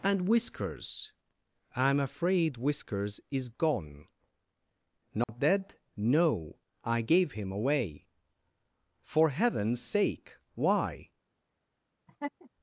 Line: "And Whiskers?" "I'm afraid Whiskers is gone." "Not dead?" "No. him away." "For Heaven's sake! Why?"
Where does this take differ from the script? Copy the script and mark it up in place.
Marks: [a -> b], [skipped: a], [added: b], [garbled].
"And Whiskers?" "I'm afraid Whiskers is gone." "Not dead?" "No. [added: I gave] him away." "For Heaven's sake! Why?"